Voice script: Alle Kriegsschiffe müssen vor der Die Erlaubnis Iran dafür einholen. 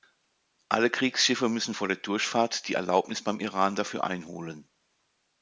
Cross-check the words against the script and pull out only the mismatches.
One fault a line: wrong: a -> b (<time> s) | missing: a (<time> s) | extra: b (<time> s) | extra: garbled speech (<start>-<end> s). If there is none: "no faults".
extra: Durchfahrt (2.0 s)
extra: beim (3.2 s)